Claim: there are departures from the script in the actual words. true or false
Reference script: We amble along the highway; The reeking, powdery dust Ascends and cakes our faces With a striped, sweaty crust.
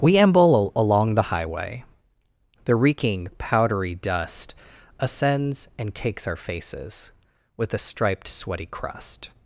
false